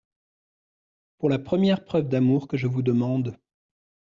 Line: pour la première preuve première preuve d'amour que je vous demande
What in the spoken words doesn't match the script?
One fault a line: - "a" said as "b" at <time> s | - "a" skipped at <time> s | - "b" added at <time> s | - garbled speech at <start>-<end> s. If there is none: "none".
- "première preuve" skipped at 2.1 s